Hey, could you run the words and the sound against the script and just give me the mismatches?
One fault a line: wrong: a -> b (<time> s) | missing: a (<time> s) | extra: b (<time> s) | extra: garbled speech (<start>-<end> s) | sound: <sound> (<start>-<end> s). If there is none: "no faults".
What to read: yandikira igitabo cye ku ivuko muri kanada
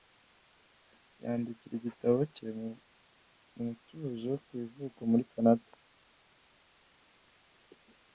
extra: mu mutuzo (2.6 s)